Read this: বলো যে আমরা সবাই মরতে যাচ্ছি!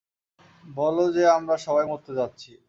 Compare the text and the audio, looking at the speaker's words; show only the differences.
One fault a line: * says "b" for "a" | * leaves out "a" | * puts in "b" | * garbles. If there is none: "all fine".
all fine